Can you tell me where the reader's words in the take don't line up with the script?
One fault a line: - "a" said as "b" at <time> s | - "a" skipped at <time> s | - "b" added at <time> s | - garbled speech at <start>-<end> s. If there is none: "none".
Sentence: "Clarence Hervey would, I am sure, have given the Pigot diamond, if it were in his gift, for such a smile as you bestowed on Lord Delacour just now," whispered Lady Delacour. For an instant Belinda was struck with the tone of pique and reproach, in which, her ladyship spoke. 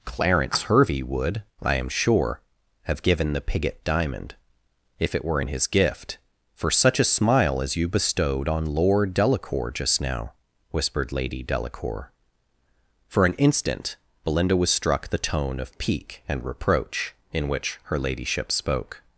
- "with" skipped at 15.1 s